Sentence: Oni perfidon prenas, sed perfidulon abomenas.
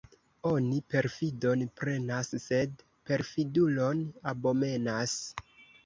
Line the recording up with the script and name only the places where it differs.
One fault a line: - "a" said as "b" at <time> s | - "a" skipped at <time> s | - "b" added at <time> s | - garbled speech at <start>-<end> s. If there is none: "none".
none